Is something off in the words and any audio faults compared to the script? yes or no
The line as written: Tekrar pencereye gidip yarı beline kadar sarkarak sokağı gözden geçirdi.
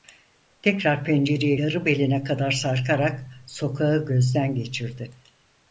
yes